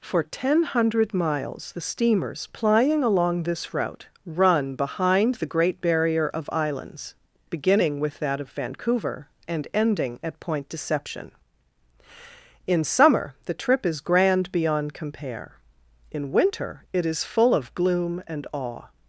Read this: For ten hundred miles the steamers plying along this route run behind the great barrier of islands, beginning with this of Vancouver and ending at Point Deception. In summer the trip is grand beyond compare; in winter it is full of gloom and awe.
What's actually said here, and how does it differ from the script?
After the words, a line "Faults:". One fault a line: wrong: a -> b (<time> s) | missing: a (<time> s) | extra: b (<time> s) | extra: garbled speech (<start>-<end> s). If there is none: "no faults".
For ten hundred miles the steamers plying along this route run behind the great barrier of islands, beginning with that of Vancouver and ending at Point Deception. In summer the trip is grand beyond compare; in winter it is full of gloom and awe.
Faults:
wrong: this -> that (8.2 s)